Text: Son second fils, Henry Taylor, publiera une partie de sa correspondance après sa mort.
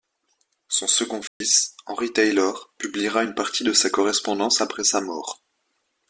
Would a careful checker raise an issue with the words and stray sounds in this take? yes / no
yes